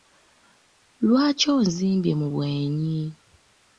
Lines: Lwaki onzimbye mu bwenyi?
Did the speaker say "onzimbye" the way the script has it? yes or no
yes